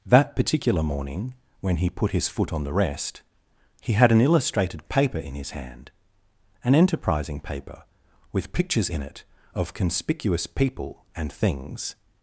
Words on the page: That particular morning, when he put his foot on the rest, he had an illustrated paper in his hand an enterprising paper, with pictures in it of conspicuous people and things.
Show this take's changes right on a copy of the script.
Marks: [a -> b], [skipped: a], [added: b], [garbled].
That particular morning, when he put his foot on the rest, he had an illustrated paper in his hand an enterprising paper, with pictures in it of conspicuous people and things.